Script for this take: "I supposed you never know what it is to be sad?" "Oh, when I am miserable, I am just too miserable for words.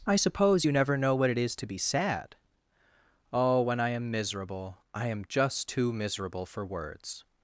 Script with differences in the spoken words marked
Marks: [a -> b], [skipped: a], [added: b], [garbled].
"I [supposed -> suppose] you never know what it is to be sad?" "Oh, when I am miserable, I am just too miserable for words.